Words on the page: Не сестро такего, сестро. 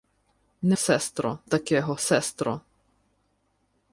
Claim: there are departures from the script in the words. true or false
false